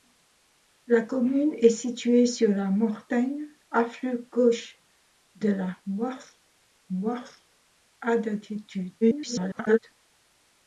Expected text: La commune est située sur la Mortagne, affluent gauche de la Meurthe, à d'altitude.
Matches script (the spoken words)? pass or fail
fail